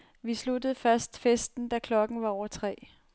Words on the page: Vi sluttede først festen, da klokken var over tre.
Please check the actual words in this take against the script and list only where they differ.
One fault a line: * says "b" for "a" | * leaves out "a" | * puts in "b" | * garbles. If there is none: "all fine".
all fine